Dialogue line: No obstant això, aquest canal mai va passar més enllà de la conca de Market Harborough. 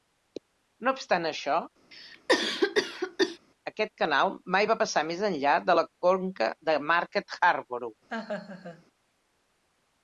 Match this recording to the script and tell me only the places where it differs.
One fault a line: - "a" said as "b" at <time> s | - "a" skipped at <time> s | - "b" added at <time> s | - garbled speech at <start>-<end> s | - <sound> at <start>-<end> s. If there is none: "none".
- cough at 1.9-3.4 s
- laugh at 8.1-8.8 s